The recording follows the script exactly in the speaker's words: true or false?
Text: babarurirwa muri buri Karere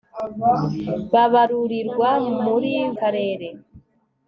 false